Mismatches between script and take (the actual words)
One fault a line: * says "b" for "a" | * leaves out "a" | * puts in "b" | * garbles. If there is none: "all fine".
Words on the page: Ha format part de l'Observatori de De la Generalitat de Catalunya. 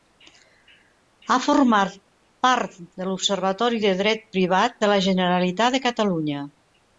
* puts in "Dret Privat"